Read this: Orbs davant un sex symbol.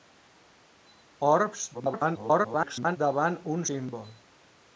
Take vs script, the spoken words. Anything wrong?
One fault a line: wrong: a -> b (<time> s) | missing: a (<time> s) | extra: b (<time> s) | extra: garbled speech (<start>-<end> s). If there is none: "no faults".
extra: garbled speech (1.7-3.0 s)
missing: sex (3.6 s)